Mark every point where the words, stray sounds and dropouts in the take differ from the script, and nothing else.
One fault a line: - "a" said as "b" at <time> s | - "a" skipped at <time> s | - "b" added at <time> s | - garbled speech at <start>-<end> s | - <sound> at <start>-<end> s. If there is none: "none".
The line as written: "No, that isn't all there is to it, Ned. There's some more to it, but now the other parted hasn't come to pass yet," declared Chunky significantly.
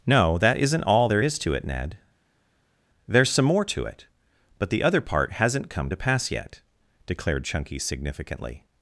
- "now" skipped at 4.7 s
- "parted" said as "part" at 5.0 s